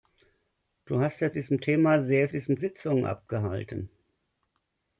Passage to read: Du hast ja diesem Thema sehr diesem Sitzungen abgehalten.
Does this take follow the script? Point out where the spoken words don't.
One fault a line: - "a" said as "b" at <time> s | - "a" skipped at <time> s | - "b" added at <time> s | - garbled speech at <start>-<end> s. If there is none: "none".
none